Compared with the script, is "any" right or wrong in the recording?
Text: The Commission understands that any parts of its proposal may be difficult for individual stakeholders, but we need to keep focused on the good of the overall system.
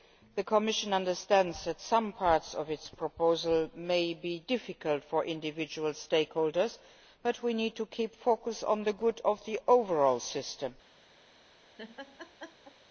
wrong